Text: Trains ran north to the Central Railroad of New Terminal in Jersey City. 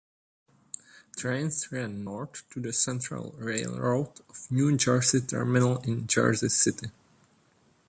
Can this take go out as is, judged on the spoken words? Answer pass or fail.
fail